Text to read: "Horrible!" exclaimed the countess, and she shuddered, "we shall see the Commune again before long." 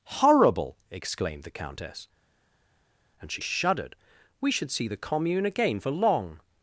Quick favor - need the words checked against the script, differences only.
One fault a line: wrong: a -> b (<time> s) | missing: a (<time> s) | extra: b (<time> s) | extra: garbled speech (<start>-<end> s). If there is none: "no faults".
wrong: shall -> should (4.5 s)
wrong: before -> for (5.8 s)